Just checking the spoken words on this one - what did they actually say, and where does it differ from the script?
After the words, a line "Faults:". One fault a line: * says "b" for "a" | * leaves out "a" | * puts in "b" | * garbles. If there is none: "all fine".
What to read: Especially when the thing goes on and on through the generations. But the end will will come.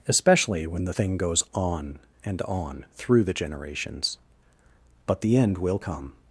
Especially when the thing goes on and on through the generations. But the end will come.
Faults:
* leaves out "will"